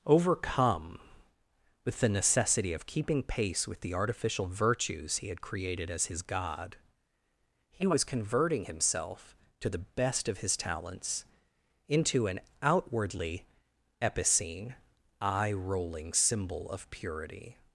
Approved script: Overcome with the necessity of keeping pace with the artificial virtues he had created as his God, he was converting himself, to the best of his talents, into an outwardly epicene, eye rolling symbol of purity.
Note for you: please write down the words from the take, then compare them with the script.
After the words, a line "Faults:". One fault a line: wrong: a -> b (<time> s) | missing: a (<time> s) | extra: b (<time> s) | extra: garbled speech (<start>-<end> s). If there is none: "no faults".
Overcome with the necessity of keeping pace with the artificial virtues he had created as his God, he was converting himself, to the best of his talents, into an outwardly epicene, eye rolling symbol of purity.
Faults:
no faults